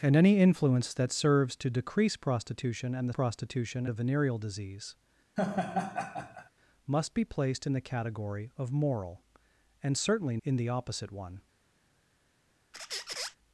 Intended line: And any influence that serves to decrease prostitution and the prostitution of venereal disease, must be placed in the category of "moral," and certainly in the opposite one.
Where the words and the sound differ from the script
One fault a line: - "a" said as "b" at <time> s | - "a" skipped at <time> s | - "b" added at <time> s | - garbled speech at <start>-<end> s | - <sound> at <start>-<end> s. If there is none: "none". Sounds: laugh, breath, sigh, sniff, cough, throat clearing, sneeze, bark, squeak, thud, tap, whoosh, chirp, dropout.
- laugh at 5.4-6.5 s
- squeak at 12.7-13.4 s